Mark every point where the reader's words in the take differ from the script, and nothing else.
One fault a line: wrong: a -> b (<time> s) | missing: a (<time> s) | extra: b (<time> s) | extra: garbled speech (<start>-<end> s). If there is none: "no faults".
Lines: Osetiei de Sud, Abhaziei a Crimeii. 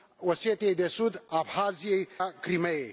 no faults